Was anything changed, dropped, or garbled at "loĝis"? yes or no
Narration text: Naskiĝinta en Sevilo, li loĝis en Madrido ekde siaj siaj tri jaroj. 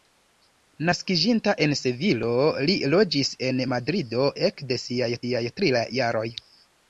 no